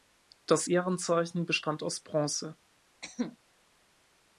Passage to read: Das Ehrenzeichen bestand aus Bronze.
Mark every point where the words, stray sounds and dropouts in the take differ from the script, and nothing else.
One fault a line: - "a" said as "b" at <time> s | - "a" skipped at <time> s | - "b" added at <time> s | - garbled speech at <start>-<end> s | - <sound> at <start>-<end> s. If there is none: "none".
- cough at 3.0-3.4 s